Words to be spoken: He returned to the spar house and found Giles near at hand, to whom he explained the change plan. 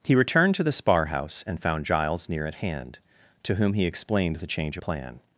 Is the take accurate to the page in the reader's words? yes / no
yes